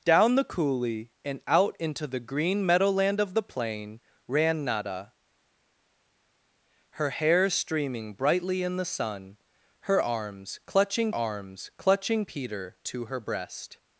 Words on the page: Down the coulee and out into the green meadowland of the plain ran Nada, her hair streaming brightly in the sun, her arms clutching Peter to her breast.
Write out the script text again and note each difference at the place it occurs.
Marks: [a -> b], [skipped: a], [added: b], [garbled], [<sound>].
Down the coulee and out into the green meadowland of the plain ran Nada, her hair streaming brightly in the sun, her arms clutching [added: arms clutching] Peter to her breast.